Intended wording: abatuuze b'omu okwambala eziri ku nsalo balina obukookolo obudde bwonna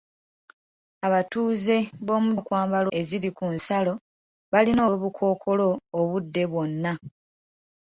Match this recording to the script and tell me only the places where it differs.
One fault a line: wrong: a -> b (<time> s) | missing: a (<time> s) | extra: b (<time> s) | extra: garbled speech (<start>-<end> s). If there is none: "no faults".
no faults